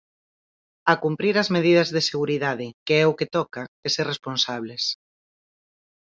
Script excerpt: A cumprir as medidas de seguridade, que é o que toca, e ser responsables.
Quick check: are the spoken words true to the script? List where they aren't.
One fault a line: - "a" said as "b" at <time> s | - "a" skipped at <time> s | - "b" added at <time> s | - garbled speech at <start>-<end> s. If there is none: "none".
none